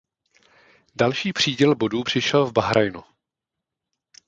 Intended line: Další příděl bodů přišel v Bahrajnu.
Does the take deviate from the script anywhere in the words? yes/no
no